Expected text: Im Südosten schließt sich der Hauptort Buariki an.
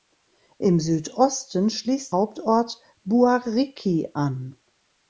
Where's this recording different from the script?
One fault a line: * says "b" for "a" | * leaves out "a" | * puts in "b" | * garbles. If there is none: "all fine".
* leaves out "sich der"